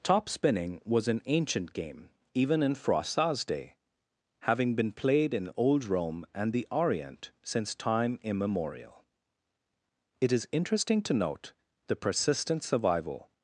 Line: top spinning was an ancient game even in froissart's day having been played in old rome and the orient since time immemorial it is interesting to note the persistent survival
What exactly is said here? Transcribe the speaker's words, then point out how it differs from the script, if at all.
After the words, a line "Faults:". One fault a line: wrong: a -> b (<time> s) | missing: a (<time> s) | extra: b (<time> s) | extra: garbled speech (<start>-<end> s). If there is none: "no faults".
top spinning was an ancient game even in froissart's day having been played in old rome and the orient since time immemorial it is interesting to note the persistent survival
Faults:
no faults